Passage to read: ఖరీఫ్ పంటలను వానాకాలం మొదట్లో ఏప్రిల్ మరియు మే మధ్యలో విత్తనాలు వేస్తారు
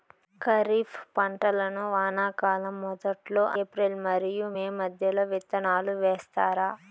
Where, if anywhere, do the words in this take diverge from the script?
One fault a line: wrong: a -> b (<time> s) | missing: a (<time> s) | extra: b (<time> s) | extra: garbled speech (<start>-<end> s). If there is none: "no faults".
no faults